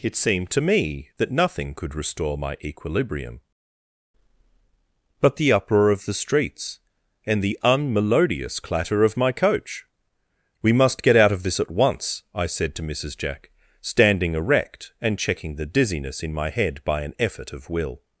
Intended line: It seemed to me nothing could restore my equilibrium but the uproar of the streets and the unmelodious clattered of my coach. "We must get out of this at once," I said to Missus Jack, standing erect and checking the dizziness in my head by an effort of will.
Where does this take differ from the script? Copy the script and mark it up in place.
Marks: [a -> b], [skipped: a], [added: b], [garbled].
It seemed to me [added: that] nothing could restore my equilibrium but the uproar of the streets and the unmelodious [clattered -> clatter] of my coach. "We must get out of this at once," I said to Missus Jack, standing erect and checking the dizziness in my head by an effort of will.